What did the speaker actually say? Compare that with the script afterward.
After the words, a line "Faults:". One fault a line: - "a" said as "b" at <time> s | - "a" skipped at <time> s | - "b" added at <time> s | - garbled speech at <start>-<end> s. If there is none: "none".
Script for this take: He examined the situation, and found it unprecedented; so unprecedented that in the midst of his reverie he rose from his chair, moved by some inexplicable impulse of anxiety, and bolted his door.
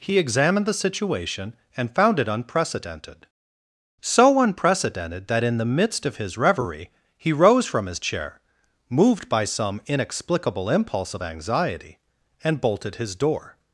He examined the situation, and found it unprecedented; so unprecedented that in the midst of his reverie he rose from his chair, moved by some inexplicable impulse of anxiety, and bolted his door.
Faults:
none